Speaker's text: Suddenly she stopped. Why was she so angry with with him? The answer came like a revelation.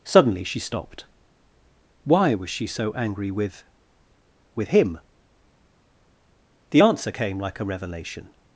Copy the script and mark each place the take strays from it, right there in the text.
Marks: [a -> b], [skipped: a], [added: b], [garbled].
Suddenly she stopped. Why was she so angry with with him? The answer came like a revelation.